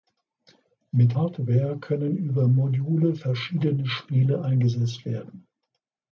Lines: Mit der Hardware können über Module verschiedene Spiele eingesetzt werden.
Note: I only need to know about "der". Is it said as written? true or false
false